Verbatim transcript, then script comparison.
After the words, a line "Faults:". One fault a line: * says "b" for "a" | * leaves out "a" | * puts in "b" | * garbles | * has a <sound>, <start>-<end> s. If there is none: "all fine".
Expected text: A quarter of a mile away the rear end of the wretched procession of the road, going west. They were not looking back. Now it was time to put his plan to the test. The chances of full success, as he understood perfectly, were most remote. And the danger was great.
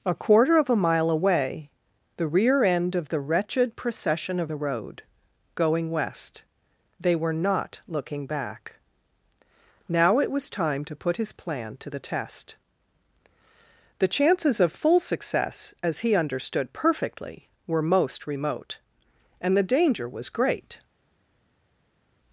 A quarter of a mile away the rear end of the wretched procession of the road, going west. They were not looking back. Now it was time to put his plan to the test. The chances of full success, as he understood perfectly, were most remote. And the danger was great.
Faults:
all fine